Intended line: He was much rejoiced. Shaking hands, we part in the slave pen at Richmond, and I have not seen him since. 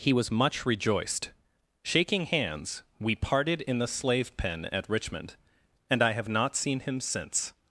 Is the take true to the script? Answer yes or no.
no